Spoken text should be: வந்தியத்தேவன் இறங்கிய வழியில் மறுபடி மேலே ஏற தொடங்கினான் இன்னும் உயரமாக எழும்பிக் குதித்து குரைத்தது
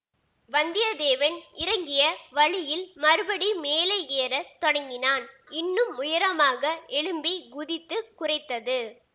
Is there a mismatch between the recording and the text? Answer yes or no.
no